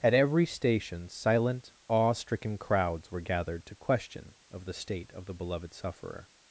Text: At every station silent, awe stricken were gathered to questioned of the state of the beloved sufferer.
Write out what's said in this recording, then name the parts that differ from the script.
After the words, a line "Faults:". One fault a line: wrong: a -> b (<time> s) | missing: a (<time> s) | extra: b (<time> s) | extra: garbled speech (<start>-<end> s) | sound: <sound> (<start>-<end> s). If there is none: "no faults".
At every station silent, awe stricken crowds were gathered to question of the state of the beloved sufferer.
Faults:
extra: crowds (2.6 s)
wrong: questioned -> question (3.8 s)